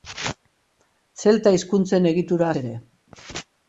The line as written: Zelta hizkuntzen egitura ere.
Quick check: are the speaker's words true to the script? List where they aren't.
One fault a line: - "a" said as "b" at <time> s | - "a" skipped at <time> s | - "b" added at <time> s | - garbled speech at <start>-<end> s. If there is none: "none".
none